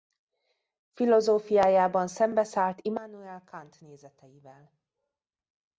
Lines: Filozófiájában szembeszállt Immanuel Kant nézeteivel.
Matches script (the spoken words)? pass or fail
pass